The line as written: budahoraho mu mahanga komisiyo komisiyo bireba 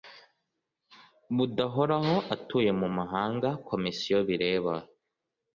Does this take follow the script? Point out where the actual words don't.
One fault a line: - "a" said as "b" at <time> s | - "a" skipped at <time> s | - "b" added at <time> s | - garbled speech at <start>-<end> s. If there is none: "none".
- "atuye" added at 2.4 s
- "komisiyo" skipped at 4.2 s